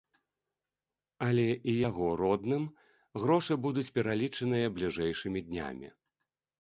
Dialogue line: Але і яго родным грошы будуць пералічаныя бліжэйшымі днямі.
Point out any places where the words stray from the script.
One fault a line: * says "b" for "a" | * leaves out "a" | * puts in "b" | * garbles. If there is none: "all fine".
all fine